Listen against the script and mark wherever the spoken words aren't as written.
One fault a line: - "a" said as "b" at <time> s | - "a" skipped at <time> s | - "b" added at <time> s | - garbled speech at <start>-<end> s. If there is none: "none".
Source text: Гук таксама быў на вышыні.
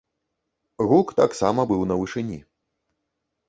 none